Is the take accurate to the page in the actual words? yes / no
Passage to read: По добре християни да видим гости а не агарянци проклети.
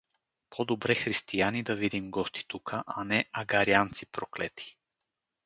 no